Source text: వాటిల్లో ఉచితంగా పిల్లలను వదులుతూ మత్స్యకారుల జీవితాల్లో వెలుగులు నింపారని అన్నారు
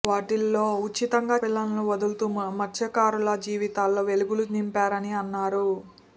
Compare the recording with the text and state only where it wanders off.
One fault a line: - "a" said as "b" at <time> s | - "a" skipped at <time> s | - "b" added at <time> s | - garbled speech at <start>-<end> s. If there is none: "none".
none